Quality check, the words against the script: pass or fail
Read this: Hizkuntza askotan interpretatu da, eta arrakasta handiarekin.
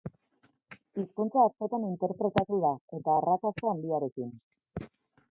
pass